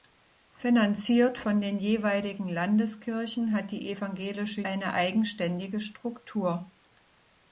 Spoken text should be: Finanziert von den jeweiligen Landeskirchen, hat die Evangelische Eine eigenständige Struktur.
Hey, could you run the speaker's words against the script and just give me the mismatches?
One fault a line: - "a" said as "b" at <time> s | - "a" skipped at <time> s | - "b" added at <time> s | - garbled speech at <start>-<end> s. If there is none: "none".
none